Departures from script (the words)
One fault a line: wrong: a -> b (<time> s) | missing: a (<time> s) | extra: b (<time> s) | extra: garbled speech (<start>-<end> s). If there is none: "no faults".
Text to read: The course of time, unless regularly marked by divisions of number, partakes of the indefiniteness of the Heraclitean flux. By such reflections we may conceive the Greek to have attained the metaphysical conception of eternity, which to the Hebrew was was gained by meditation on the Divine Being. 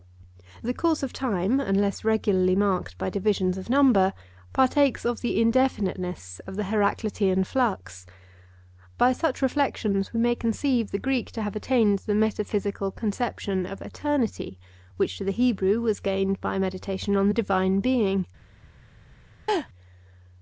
missing: was (16.0 s)